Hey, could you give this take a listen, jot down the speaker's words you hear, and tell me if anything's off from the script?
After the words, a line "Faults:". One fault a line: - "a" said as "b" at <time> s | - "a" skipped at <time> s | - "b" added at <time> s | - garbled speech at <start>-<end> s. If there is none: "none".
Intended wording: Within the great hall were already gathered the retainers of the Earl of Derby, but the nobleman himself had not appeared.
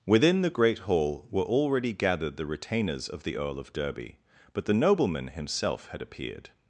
Within the great hall were already gathered the retainers of the Earl of Derby, but the nobleman himself had appeared.
Faults:
- "not" skipped at 6.0 s